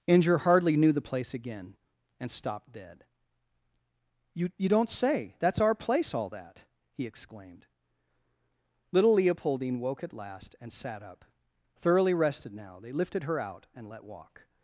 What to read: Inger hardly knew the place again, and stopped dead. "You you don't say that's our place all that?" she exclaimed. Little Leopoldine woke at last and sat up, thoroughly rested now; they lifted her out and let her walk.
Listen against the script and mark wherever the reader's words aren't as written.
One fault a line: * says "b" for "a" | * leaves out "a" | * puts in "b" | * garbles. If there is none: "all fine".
* says "he" for "she"
* leaves out "her"